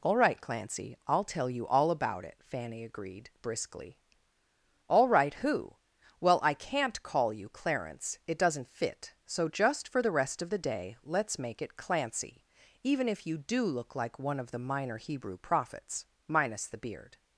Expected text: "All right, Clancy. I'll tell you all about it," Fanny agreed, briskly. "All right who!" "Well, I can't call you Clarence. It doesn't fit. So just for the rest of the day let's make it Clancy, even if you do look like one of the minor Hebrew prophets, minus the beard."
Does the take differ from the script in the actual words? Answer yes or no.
no